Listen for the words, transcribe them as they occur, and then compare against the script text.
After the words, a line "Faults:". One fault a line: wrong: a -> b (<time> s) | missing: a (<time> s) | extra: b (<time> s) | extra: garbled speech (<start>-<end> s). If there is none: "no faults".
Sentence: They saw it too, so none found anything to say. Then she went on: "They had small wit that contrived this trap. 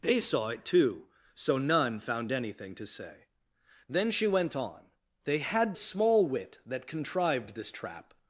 They saw it too, so none found anything to say. Then she went on: "They had small wit that contrived this trap.
Faults:
no faults